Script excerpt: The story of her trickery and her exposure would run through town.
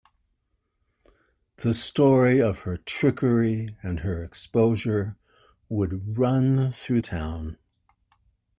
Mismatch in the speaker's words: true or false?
false